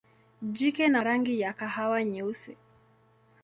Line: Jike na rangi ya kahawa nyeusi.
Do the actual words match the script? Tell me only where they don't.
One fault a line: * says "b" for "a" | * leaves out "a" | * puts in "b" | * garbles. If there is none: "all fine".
all fine